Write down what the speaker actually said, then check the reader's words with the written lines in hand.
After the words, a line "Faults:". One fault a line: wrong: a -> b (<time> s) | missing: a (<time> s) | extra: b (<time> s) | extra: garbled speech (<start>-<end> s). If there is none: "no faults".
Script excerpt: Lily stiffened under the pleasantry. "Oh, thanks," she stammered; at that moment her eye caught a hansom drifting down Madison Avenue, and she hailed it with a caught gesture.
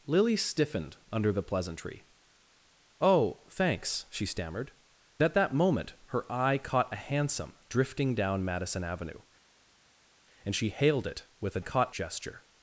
Lily stiffened under the pleasantry. "Oh, thanks," she stammered; at that moment her eye caught a hansom drifting down Madison Avenue, and she hailed it with a caught gesture.
Faults:
no faults